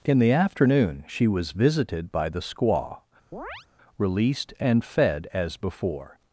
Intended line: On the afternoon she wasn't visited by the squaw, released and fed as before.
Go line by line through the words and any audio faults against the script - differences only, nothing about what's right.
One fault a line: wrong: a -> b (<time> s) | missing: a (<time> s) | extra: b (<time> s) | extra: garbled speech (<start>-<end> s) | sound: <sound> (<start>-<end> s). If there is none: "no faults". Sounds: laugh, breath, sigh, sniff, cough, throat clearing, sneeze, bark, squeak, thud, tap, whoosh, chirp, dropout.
wrong: On -> In (0.0 s)
wrong: wasn't -> was (1.3 s)
sound: chirp (3.3-3.7 s)